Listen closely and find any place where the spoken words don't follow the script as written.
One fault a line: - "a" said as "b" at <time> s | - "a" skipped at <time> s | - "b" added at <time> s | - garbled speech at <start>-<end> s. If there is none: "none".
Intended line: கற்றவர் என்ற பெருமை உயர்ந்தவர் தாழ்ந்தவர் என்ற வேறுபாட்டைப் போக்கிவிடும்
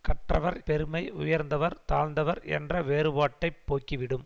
- "என்ற" skipped at 0.6 s